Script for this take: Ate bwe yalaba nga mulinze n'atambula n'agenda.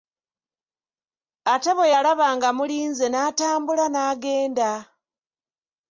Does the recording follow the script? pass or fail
pass